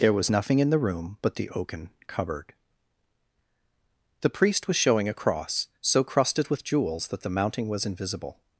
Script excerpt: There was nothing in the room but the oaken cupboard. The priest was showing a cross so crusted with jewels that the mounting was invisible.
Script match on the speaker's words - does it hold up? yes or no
yes